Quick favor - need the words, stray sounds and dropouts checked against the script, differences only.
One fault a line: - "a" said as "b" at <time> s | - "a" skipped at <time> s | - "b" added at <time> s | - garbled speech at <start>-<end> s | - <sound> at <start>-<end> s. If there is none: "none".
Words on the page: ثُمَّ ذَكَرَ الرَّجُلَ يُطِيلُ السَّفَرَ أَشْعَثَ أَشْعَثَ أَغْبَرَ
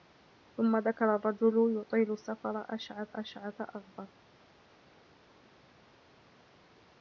none